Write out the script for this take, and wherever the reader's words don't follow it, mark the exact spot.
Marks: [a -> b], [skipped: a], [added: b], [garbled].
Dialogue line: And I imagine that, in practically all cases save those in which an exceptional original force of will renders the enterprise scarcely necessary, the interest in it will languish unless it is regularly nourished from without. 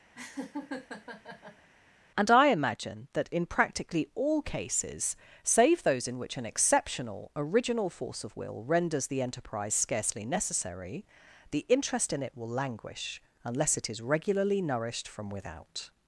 And I imagine that, in practically all cases save those in which an exceptional original force of will renders the enterprise scarcely necessary, the interest in it will languish unless it is regularly nourished from without.